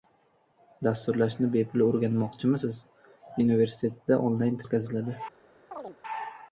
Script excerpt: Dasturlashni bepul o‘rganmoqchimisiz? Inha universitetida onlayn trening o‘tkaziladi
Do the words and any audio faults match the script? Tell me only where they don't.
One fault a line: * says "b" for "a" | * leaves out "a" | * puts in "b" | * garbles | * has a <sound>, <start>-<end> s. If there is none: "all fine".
* leaves out "Inha"
* leaves out "trening"
* has a chirp, 5.7-6.0 s